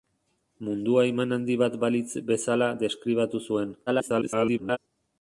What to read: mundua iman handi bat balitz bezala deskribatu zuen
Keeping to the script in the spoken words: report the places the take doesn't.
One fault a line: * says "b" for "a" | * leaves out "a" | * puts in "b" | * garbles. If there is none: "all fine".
* garbles